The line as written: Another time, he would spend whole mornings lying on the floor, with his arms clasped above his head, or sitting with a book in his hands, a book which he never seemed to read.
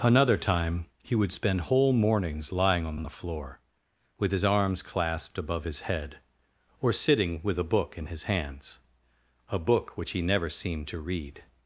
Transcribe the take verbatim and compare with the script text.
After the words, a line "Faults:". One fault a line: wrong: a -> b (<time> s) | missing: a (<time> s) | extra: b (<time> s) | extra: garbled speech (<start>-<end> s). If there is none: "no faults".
Another time, he would spend whole mornings lying on on the floor, with his arms clasped above his head, or sitting with a book in his hands, a book which he never seemed to read.
Faults:
extra: on (2.9 s)